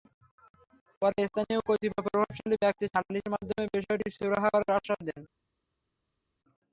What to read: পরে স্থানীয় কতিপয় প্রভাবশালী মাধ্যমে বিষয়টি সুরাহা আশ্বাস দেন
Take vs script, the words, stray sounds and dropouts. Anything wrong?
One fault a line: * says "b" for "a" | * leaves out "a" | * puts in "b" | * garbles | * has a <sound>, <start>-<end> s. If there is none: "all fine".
* puts in "ব্যক্তি সালিসের"
* puts in "করার"